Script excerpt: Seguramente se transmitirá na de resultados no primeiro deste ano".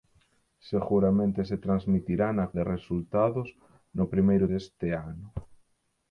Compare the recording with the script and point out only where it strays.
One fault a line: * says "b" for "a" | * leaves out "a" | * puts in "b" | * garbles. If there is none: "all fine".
all fine